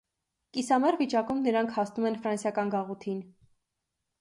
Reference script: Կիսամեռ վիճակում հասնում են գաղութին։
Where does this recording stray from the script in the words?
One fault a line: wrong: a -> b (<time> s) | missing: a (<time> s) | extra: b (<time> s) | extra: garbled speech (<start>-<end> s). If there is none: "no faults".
extra: նրանք (1.5 s)
extra: ֆրանսիական (2.2 s)